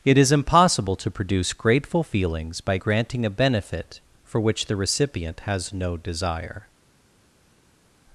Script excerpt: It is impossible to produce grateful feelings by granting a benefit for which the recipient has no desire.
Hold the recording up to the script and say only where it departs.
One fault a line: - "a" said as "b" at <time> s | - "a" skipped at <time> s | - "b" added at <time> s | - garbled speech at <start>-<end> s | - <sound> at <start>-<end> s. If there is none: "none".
none